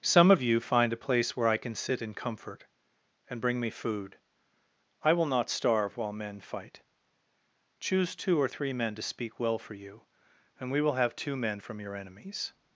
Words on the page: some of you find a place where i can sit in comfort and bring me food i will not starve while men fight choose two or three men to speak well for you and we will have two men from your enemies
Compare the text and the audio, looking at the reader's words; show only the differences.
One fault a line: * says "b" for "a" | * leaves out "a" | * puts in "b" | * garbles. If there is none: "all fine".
all fine